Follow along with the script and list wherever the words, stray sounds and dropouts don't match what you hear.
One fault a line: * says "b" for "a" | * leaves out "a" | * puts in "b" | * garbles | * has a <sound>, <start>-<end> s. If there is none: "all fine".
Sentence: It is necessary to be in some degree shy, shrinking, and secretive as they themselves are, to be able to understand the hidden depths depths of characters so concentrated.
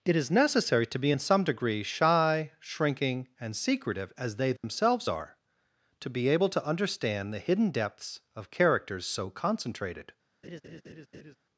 * has a dropout, 4.6-4.6 s
* leaves out "depths"
* has a laugh, 10.4-11.4 s